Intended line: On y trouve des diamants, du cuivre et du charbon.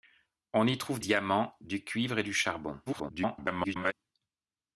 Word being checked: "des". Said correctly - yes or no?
no